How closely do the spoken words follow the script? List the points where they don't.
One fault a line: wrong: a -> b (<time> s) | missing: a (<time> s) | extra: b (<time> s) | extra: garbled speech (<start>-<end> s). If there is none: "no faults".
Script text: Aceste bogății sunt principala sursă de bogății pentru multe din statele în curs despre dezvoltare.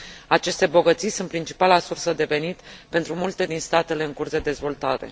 wrong: bogății -> venit (2.2 s)
wrong: despre -> de (4.3 s)